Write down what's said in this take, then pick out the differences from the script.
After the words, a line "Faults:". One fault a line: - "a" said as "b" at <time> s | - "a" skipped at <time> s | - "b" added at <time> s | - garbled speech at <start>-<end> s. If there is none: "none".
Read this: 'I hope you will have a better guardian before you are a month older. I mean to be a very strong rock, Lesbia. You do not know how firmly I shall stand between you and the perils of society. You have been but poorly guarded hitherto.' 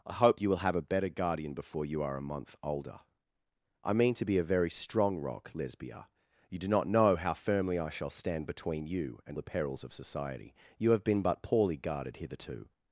'I hope you will have a better guardian before you are a month older. I mean to be a very strong rock, Lesbia. You do not know how firmly I shall stand between you and the perils of society. You have been but poorly guarded hitherto.'
Faults:
none